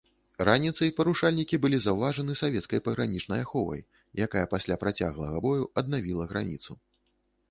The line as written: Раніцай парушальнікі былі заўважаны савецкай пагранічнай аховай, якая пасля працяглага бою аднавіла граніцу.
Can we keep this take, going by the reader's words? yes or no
yes